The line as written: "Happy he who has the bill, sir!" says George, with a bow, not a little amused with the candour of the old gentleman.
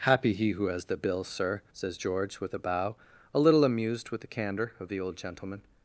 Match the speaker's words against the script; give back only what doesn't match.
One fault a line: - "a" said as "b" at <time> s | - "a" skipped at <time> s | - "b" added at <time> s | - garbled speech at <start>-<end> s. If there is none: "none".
- "not" skipped at 3.0 s